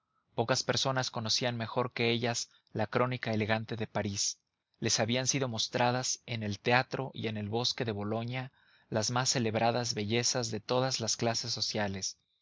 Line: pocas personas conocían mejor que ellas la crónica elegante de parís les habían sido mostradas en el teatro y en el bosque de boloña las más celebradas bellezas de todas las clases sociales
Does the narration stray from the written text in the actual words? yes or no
no